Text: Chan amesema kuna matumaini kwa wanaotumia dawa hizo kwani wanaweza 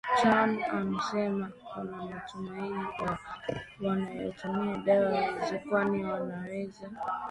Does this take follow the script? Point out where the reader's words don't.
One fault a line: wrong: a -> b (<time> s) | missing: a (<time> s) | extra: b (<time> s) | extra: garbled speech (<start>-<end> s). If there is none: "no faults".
no faults